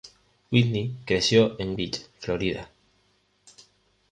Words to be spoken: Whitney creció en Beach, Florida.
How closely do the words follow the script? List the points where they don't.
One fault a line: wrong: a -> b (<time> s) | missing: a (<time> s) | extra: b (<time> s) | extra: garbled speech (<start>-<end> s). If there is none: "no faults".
no faults